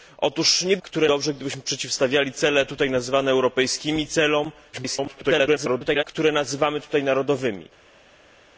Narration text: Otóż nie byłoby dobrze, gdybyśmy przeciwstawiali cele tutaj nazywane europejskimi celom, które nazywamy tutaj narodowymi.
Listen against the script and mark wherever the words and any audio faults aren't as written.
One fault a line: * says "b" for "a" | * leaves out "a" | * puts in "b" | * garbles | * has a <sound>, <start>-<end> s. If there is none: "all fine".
* says "które" for "byłoby"
* garbles